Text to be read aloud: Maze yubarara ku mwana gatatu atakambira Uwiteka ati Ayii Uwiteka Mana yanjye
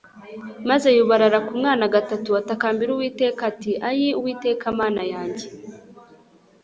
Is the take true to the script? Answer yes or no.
yes